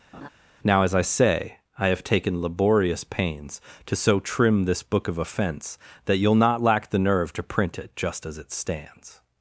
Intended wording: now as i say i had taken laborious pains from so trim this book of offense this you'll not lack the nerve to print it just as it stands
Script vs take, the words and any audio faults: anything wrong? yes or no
yes